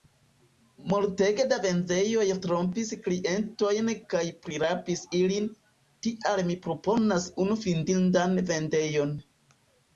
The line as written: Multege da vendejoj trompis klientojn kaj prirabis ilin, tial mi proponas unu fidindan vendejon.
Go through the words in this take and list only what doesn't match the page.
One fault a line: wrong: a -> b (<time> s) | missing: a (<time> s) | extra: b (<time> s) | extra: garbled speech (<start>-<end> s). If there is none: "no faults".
no faults